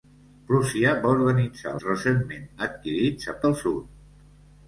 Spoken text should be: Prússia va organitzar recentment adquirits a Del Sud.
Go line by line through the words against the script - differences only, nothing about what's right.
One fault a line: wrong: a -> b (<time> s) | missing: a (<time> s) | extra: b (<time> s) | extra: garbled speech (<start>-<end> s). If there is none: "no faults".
no faults